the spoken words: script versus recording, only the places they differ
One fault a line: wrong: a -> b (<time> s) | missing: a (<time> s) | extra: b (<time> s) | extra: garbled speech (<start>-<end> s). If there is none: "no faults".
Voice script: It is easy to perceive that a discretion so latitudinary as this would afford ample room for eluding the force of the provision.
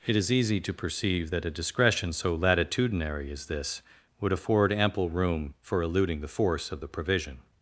no faults